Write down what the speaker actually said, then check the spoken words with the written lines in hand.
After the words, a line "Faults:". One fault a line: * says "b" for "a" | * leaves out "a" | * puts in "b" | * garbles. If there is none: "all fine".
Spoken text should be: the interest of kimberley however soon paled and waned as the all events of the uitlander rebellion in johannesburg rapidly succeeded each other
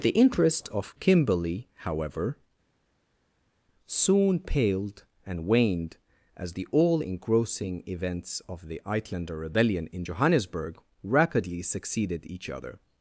the interest of kimberley however soon paled and waned as the all engrossing events of the uitlander rebellion in johannesburg rapidly succeeded each other
Faults:
* puts in "engrossing"